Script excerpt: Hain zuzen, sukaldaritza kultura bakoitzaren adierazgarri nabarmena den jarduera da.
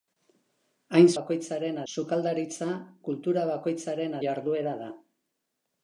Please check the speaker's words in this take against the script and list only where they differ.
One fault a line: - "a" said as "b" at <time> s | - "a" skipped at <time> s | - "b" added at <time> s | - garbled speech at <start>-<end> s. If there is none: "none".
- "zuzen" said as "bakoitzaren" at 1.2 s
- "adierazgarri nabarmena den" skipped at 4.2 s